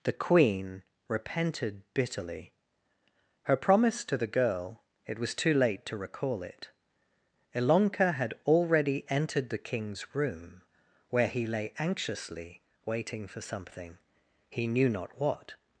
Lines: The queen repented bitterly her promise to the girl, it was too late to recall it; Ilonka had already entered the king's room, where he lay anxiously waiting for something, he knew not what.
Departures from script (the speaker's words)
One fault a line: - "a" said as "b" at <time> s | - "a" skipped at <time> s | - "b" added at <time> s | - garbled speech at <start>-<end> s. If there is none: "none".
none